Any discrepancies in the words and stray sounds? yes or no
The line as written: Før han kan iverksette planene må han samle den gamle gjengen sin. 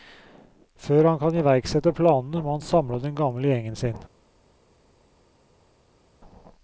no